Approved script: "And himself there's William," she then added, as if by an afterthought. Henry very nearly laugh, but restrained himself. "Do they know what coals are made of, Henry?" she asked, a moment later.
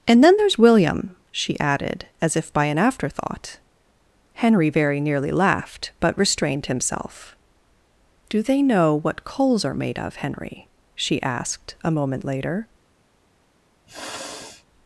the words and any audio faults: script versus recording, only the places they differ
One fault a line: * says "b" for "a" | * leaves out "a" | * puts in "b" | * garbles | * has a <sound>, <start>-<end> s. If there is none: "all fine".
* says "then" for "himself"
* leaves out "then"
* says "laughed" for "laugh"
* has a sniff, 13.9-14.7 s